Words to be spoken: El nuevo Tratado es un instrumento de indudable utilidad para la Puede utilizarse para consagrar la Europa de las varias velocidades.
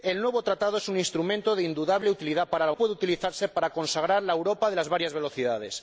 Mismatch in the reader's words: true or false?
false